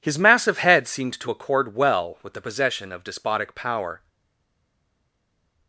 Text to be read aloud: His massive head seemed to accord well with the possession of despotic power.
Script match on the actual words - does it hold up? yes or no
yes